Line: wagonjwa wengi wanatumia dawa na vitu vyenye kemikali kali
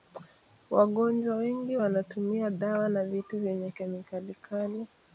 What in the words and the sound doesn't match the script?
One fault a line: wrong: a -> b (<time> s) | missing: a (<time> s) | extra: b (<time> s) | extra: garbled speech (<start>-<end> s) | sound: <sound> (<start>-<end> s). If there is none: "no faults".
no faults